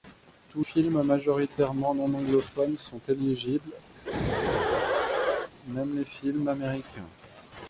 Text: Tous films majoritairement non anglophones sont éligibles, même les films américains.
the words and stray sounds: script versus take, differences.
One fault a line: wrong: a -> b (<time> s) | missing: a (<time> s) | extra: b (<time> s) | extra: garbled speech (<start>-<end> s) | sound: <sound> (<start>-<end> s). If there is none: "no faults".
sound: laugh (4.0-5.5 s)